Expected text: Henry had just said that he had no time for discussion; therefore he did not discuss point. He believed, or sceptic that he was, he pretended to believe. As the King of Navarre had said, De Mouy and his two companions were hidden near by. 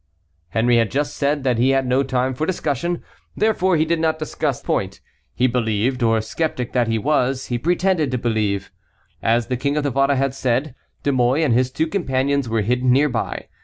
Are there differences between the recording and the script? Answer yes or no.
no